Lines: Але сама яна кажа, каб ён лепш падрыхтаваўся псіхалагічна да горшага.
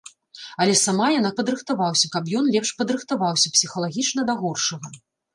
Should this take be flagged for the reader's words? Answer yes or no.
yes